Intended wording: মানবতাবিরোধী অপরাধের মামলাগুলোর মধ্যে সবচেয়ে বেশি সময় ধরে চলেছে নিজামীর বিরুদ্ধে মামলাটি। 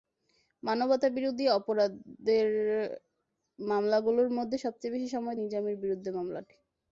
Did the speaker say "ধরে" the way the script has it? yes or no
no